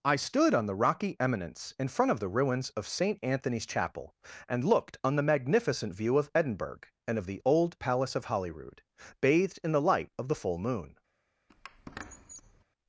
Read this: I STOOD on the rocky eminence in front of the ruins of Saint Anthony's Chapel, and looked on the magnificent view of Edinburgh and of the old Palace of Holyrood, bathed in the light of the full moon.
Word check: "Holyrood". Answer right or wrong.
right